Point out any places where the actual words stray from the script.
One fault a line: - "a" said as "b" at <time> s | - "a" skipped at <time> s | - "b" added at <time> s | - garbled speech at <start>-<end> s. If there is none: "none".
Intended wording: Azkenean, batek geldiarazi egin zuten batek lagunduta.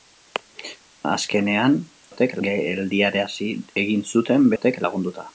none